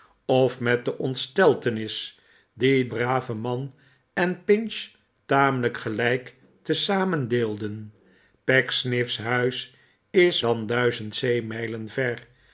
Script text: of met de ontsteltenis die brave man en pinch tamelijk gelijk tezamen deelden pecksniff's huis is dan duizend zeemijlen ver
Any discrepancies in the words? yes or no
no